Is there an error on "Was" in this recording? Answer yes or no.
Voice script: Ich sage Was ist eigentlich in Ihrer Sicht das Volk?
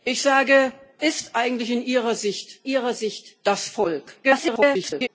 yes